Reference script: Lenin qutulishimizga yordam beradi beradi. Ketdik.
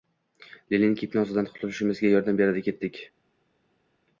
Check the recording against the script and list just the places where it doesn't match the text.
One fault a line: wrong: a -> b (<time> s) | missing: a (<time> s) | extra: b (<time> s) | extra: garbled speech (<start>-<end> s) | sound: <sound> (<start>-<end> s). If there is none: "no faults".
extra: gipnozidan (1.0 s)
missing: beradi (2.6 s)